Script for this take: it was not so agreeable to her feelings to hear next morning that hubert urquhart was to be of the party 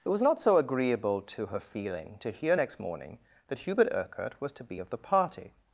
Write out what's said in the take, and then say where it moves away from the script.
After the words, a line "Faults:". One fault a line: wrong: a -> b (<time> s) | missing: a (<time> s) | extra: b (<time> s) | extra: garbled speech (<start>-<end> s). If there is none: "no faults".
it was not so agreeable to her feeling to hear next morning that hubert urquhart was to be of the party
Faults:
wrong: feelings -> feeling (1.6 s)